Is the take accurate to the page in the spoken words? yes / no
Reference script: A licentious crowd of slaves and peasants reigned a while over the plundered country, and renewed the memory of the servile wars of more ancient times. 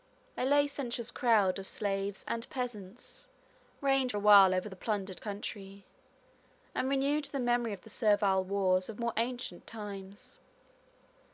yes